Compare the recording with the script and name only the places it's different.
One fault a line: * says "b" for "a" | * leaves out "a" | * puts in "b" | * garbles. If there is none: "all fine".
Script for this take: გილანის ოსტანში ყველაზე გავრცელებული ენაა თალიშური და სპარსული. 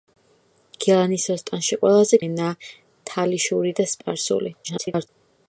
* leaves out "გავრცელებული"
* garbles